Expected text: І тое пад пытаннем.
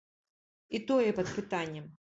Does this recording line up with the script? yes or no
yes